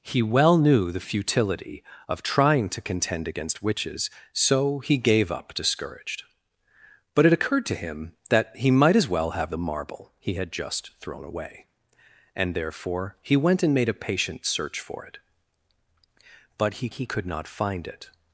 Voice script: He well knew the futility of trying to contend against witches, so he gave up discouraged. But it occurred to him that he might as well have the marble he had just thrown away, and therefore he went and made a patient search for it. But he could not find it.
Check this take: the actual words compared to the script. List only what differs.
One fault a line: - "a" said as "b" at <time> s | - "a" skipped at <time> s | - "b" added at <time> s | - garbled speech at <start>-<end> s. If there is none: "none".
- "he" added at 16.9 s